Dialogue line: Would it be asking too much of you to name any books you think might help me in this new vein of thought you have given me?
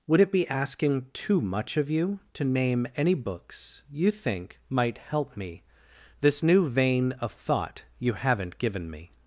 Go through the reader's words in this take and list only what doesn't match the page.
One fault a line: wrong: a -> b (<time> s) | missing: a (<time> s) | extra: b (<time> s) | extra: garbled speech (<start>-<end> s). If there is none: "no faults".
missing: in (5.6 s)
wrong: have -> haven't (8.1 s)